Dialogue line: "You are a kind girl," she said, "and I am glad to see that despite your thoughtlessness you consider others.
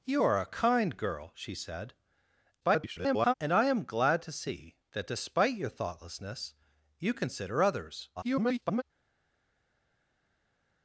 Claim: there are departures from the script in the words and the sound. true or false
true